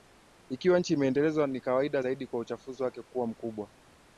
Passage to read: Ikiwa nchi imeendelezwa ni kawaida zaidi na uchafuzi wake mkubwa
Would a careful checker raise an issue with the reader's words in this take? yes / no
yes